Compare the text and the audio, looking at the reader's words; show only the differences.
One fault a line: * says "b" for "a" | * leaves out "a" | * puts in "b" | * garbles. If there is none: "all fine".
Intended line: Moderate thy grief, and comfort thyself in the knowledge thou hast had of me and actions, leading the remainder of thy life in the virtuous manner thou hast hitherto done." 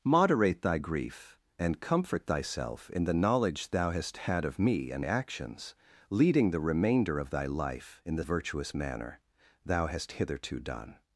all fine